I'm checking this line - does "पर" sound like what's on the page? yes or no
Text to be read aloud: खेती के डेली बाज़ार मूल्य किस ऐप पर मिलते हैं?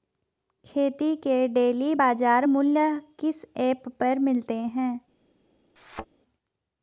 yes